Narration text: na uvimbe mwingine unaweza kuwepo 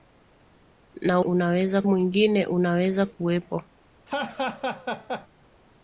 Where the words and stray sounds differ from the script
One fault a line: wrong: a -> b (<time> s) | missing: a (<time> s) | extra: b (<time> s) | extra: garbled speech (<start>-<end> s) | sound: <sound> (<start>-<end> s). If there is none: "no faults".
wrong: uvimbe -> unaweza (1.2 s)
sound: laugh (4.1-5.3 s)